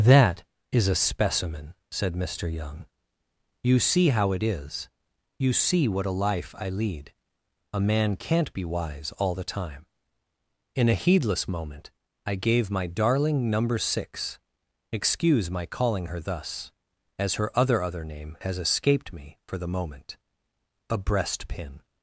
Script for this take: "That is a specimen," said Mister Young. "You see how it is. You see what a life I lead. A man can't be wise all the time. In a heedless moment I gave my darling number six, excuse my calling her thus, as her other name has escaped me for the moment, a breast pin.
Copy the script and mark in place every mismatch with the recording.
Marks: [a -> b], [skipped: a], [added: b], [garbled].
"That is a specimen," said Mister Young. "You see how it is. You see what a life I lead. A man can't be wise all the time. In a heedless moment I gave my darling number six, excuse my calling her thus, as her other [added: other] name has escaped me for the moment, a breast pin.